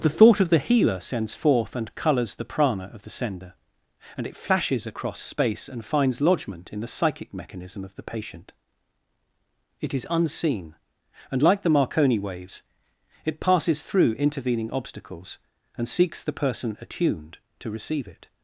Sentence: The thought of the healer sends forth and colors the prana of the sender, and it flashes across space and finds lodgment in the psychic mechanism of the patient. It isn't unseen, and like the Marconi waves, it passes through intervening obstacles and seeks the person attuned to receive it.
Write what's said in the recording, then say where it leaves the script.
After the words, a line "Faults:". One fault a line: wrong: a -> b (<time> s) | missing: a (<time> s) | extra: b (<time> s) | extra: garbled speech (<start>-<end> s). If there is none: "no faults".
The thought of the healer sends forth and colors the prana of the sender, and it flashes across space and finds lodgment in the psychic mechanism of the patient. It is unseen, and like the Marconi waves, it passes through intervening obstacles and seeks the person attuned to receive it.
Faults:
wrong: isn't -> is (9.9 s)